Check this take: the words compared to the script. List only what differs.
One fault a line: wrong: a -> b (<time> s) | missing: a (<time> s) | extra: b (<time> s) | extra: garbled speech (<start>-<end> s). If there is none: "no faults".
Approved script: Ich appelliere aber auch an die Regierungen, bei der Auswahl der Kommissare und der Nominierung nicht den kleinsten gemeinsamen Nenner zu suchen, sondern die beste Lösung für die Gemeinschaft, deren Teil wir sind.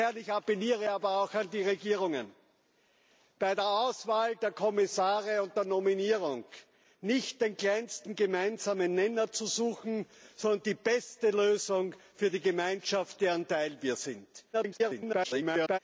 extra: garbled speech (14.5-15.8 s)